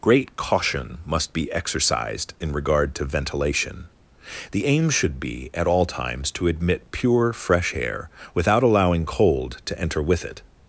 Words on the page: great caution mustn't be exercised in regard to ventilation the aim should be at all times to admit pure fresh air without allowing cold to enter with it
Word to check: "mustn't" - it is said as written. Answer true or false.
false